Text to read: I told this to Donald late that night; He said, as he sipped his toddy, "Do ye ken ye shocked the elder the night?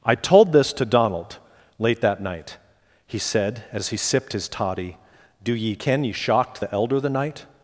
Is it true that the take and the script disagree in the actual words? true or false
false